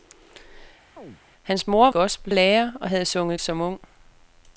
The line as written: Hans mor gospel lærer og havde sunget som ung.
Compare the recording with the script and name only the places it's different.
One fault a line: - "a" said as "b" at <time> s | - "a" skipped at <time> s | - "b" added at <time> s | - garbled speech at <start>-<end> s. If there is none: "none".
none